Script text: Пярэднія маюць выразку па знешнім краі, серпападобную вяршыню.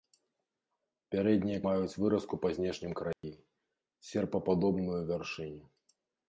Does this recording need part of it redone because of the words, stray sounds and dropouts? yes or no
yes